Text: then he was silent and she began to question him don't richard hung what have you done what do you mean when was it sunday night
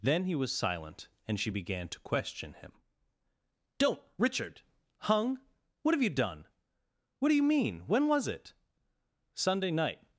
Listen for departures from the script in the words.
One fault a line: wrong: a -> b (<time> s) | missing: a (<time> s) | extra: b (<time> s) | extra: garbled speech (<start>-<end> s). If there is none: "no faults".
no faults